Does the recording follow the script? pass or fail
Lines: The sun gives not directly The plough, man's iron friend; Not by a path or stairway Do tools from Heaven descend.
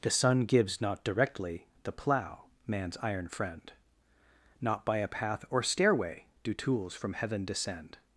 pass